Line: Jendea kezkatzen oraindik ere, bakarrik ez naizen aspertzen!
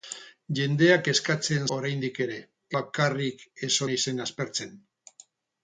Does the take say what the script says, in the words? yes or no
yes